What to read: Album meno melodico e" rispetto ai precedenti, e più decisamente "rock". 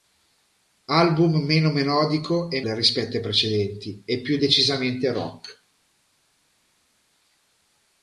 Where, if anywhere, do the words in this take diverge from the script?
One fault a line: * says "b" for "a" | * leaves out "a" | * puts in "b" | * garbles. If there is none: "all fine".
all fine